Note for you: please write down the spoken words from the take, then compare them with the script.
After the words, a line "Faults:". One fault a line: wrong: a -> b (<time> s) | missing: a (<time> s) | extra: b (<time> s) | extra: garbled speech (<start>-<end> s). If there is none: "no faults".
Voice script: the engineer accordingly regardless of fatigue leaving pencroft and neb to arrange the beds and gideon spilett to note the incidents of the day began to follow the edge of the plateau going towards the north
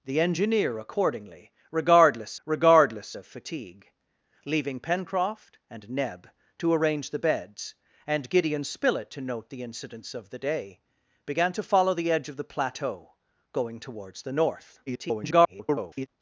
the engineer accordingly regardless regardless of fatigue leaving pencroft and neb to arrange the beds and gideon spilett to note the incidents of the day began to follow the edge of the plateau going towards the north [garbled]
Faults:
extra: regardless (2.4 s)
extra: garbled speech (14.9-16.1 s)